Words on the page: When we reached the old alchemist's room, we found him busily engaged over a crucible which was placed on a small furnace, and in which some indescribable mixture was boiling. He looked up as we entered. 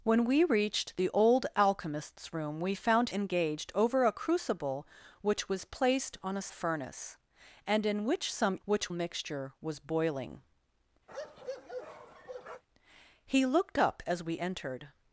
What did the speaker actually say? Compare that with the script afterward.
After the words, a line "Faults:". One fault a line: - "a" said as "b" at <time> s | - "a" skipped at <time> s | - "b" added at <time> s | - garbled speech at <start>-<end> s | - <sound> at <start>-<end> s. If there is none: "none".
When we reached the old alchemist's room, we found engaged over a crucible which was placed on a furnace, and in which some which mixture was boiling. He looked up as we entered.
Faults:
- "him busily" skipped at 3.1 s
- "small" skipped at 6.5 s
- "indescribable" said as "which" at 8.6 s
- bark at 11.1-12.6 s